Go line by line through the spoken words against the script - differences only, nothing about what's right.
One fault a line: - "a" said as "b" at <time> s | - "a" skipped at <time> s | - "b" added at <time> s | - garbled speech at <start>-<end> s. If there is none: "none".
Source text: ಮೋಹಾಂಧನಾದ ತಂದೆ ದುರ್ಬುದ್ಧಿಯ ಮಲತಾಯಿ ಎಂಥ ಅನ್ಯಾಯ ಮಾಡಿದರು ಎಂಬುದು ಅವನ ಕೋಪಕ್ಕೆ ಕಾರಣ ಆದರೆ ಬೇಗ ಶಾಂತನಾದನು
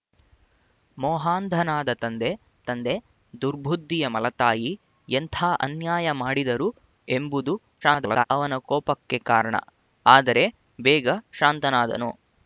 - "ತಂದೆ" added at 2.6 s
- garbled speech at 7.8-8.2 s